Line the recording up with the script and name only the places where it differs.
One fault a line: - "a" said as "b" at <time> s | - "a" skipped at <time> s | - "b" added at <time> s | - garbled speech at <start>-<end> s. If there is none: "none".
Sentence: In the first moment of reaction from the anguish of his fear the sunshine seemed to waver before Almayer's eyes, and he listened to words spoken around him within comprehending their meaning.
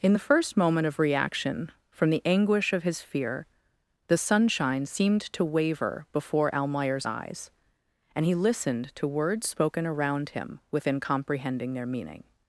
none